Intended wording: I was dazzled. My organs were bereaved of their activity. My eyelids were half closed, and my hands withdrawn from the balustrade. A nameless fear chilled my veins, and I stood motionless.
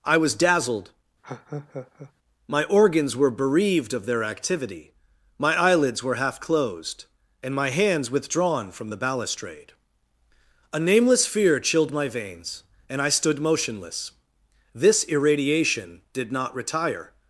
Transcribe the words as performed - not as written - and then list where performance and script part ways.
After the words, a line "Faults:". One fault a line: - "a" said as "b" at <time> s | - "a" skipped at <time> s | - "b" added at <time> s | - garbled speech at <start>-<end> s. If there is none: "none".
I was dazzled. My organs were bereaved of their activity. My eyelids were half closed, and my hands withdrawn from the balustrade. A nameless fear chilled my veins, and I stood motionless. This irradiation did not retire
Faults:
- "This irradiation did not retire" added at 14.7 s